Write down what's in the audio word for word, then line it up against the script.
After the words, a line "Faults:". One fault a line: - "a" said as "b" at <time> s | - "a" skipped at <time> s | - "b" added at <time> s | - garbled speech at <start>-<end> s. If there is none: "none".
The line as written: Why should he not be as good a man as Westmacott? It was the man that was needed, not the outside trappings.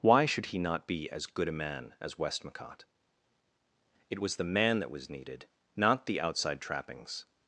Why should he not be as good a man as Westmacott? It was the man that was needed, not the outside trappings.
Faults:
none